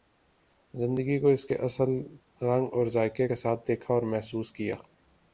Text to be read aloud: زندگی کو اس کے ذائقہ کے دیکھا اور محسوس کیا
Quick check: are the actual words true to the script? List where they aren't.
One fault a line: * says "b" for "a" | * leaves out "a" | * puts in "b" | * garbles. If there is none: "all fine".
* puts in "اصل رنگ اور"
* puts in "ساتھ"